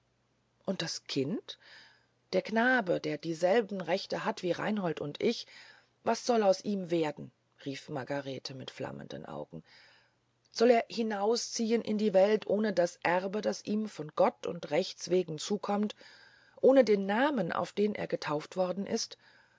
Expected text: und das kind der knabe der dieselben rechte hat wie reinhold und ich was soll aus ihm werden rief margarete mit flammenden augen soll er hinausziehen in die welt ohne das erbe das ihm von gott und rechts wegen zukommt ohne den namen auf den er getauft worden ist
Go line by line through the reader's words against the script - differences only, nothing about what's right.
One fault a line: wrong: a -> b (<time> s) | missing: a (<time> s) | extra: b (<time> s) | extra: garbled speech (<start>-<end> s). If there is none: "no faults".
no faults